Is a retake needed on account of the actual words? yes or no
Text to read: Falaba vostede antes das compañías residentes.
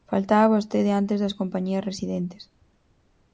no